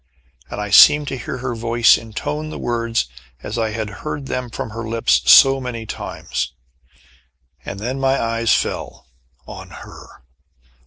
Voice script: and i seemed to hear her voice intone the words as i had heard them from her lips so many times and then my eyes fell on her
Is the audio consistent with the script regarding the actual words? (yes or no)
yes